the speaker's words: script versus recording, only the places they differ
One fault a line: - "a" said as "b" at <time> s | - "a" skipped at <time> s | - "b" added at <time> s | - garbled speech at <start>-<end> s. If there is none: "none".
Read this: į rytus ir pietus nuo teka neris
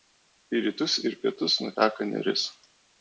none